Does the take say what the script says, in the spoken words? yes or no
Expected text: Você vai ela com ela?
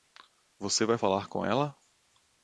no